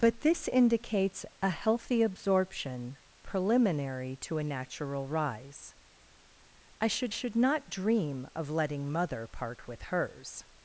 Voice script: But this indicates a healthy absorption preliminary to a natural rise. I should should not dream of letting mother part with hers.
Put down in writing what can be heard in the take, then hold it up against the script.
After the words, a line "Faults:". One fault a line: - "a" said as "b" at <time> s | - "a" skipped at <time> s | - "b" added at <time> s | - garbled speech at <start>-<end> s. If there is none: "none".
But this indicates a healthy absorption preliminary to a natural rise. I should should not dream of letting mother part with hers.
Faults:
none